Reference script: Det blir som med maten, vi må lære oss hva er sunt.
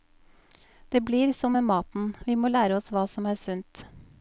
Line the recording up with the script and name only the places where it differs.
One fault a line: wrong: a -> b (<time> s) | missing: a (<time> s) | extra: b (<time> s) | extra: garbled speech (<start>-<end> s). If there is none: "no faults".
extra: som (3.1 s)